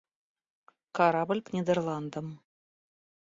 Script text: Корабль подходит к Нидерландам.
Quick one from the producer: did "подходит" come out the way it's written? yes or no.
no